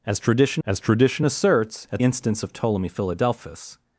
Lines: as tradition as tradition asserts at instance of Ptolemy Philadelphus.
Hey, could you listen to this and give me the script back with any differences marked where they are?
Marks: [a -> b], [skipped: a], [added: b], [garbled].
as tradition as tradition asserts at instance of Ptolemy Philadelphus.